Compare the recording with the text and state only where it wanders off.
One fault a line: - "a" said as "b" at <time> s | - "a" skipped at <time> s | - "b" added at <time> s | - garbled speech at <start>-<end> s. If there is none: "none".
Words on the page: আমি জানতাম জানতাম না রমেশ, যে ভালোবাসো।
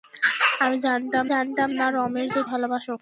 none